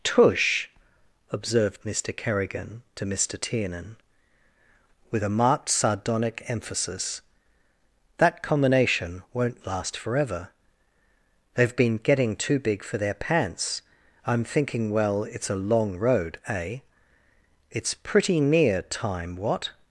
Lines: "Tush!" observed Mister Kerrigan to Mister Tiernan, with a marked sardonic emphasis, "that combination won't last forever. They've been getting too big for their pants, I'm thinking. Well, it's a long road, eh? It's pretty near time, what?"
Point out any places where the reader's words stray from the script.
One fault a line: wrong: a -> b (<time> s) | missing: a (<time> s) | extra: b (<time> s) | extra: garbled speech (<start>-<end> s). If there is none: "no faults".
no faults